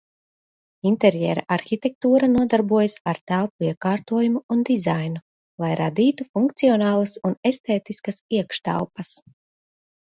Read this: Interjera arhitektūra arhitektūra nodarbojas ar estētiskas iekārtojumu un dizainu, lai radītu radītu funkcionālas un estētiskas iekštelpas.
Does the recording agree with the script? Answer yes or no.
no